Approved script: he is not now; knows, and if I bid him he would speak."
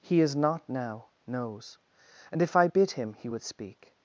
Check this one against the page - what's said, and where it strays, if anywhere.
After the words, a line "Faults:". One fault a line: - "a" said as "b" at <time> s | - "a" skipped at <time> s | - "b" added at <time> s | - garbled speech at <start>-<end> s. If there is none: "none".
he is not now; knows, and if I bid him he would speak."
Faults:
none